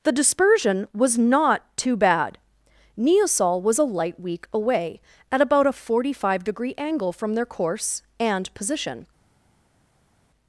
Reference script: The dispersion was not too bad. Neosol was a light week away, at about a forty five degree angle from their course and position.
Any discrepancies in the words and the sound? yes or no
no